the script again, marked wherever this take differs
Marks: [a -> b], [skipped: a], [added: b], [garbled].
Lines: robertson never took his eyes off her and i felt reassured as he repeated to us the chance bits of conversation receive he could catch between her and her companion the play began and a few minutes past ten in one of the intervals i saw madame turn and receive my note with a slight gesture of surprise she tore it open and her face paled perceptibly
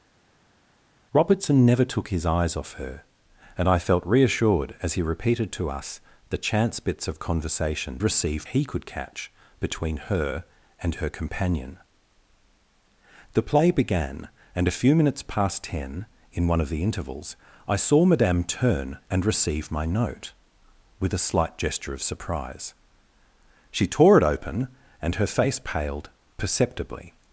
robertson never took his eyes off her and i felt reassured as he repeated to us the chance bits of conversation receive he could catch between her and her companion the play began and a few minutes past ten in one of the intervals i saw madame turn and receive my note with a slight gesture of surprise she tore it open and her face paled perceptibly